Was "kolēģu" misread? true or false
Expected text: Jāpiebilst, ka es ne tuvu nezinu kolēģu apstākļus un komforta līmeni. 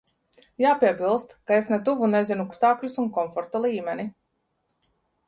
true